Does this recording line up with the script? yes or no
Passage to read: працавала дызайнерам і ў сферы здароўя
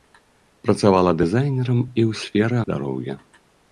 yes